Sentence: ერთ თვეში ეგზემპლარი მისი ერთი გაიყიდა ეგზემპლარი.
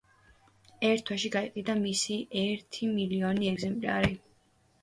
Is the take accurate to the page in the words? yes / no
no